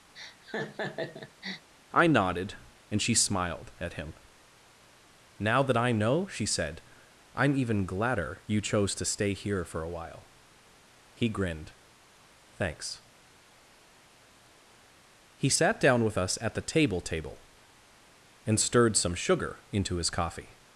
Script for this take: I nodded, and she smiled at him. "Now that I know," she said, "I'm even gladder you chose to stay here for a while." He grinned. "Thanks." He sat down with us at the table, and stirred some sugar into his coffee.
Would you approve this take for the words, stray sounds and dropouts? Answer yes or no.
no